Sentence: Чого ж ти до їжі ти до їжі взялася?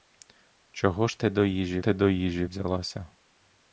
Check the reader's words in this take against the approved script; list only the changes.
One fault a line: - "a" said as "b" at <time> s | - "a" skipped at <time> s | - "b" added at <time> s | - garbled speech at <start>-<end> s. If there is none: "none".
none